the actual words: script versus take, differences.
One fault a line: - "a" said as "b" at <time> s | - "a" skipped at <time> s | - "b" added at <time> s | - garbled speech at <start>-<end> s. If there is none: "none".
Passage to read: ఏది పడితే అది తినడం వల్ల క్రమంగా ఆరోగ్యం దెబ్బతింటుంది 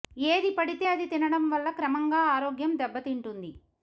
none